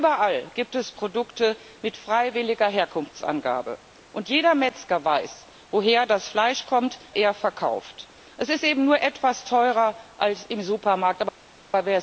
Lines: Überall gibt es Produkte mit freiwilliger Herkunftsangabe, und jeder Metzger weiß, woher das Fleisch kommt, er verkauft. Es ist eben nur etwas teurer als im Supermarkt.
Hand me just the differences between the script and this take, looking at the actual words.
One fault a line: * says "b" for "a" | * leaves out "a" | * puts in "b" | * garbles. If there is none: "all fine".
all fine